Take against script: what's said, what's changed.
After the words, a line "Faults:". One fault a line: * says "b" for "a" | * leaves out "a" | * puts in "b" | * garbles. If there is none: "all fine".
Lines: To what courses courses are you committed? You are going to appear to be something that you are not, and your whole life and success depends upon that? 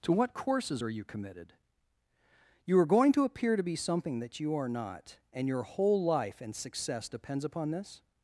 To what courses are you committed? You are going to appear to be something that you are not, and your whole life and success depends upon this?
Faults:
* leaves out "courses"
* says "this" for "that"